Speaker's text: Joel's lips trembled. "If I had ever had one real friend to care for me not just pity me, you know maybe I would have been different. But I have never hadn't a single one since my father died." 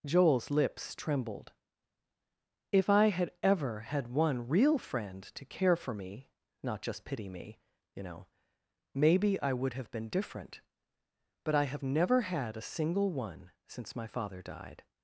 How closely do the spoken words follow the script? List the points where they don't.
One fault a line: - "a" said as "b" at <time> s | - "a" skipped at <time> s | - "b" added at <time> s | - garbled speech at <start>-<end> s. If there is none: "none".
- "hadn't" said as "had" at 12.2 s